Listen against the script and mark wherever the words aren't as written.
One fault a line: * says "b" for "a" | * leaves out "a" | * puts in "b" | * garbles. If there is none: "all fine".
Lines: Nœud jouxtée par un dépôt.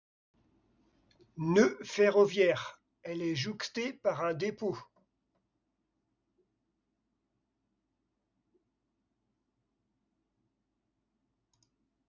* puts in "ferroviaire elle est"